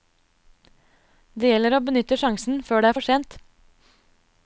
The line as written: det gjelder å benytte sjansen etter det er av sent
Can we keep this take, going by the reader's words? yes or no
no